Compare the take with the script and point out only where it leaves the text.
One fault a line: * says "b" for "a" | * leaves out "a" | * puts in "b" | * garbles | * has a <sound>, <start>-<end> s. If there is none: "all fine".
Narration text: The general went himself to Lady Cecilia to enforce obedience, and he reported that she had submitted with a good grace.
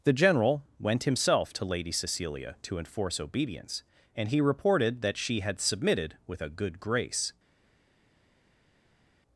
all fine